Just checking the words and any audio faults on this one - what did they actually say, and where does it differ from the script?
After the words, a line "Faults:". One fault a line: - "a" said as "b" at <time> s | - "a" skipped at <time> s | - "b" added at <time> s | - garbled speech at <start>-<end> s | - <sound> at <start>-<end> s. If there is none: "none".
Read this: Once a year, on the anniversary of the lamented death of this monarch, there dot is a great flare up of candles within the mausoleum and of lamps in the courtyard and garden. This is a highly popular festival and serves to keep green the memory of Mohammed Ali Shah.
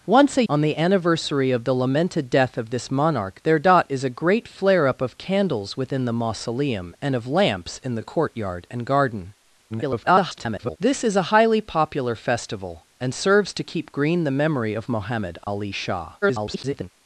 Once a on the anniversary of the lamented death of this monarch, there dot is a great flare up of candles within the mausoleum and of lamps in the courtyard and garden. [garbled] This is a highly popular festival and serves to keep green the memory of Mohammed Ali Shah. [garbled]
Faults:
- "year" skipped at 0.4 s
- garbled speech at 9.7-10.8 s
- dropout at 15.4-15.5 s
- garbled speech at 16.2-16.9 s